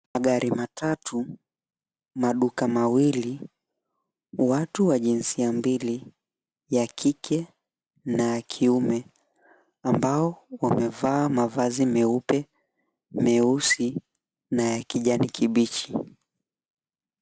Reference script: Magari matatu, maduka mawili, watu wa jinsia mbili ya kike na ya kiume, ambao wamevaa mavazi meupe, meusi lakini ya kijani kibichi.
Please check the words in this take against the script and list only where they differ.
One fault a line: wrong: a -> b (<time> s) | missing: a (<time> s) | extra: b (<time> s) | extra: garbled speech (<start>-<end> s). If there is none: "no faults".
wrong: lakini -> na (14.5 s)